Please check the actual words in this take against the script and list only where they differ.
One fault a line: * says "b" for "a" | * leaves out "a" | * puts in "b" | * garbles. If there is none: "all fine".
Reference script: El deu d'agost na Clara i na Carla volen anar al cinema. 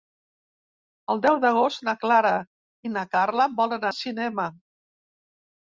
* leaves out "anar"